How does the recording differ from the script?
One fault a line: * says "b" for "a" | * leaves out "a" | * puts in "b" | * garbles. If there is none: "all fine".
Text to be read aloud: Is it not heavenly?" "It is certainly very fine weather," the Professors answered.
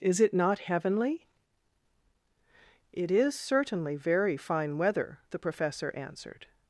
* says "Professor" for "Professors"